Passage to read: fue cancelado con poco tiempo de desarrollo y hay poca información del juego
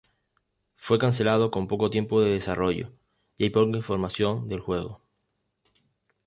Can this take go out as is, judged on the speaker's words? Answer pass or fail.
pass